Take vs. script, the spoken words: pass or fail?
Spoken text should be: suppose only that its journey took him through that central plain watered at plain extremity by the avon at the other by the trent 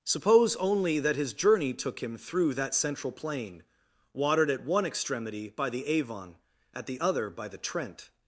fail